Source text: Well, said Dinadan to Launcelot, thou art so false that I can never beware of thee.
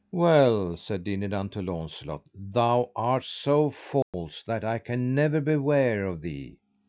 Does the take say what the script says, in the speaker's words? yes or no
yes